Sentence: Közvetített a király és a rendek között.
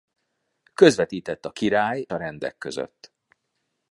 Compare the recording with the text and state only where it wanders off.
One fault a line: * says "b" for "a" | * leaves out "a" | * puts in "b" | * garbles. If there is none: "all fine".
* leaves out "és"